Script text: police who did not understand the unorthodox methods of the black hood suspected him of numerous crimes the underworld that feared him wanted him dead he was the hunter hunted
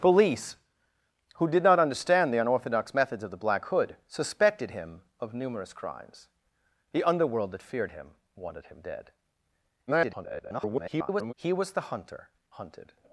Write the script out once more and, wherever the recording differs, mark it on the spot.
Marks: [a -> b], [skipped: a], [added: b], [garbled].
police who did not understand the unorthodox methods of the black hood suspected him of numerous crimes the underworld that feared him wanted him dead [garbled] he was the hunter hunted